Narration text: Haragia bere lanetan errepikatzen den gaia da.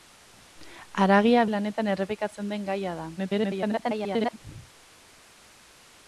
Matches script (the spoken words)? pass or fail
fail